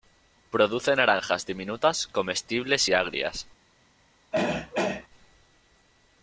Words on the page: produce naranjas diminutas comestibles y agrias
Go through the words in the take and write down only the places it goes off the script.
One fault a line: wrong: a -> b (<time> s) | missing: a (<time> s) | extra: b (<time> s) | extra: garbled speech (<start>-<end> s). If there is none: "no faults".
no faults